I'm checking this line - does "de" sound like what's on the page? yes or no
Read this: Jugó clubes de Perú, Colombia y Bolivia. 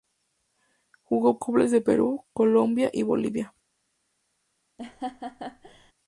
yes